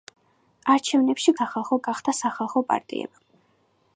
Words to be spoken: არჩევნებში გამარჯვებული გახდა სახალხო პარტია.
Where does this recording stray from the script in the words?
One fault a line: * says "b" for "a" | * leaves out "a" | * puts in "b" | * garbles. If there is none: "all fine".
* says "სახალხო" for "გამარჯვებული"